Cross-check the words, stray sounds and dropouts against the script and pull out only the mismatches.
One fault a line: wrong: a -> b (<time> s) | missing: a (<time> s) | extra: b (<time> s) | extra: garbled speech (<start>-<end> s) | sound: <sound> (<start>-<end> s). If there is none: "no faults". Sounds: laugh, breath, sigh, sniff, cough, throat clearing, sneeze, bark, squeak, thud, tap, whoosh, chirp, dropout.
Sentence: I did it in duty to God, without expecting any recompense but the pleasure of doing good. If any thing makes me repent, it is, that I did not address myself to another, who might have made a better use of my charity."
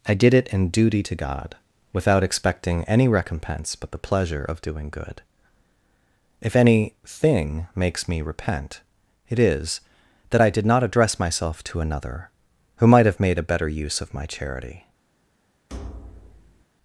sound: thud (15.7-16.6 s)